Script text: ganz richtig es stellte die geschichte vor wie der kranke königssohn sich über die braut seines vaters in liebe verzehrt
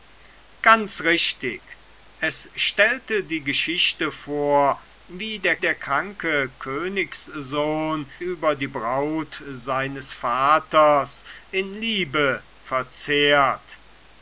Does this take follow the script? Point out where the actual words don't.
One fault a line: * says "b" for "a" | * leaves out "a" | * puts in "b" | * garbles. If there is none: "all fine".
* puts in "der"
* leaves out "sich"